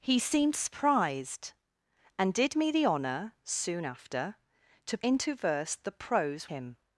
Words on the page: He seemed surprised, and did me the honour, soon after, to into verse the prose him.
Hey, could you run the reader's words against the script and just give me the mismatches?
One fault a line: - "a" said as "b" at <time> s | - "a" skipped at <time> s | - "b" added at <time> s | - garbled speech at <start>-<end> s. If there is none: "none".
none